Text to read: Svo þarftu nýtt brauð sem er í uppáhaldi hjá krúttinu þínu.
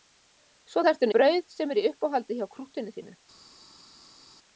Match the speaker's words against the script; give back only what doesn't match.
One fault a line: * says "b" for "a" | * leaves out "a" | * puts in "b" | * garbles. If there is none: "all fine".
* leaves out "nýtt"